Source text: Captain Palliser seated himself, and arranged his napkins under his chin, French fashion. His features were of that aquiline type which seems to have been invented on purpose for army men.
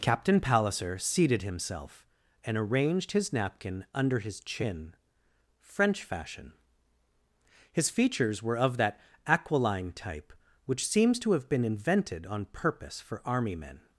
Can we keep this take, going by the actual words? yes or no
no